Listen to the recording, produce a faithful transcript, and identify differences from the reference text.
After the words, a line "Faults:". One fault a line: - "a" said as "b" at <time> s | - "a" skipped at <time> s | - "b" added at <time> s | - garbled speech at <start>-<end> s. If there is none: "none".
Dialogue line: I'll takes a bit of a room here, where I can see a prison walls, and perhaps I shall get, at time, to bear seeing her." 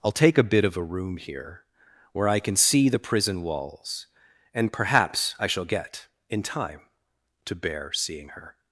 I'll take a bit of a room here, where I can see the prison walls, and perhaps I shall get, in time, to bear seeing her."
Faults:
- "takes" said as "take" at 0.1 s
- "a" said as "the" at 2.9 s
- "at" said as "in" at 6.3 s